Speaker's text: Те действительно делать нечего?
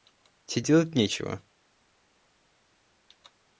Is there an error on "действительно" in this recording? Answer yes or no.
yes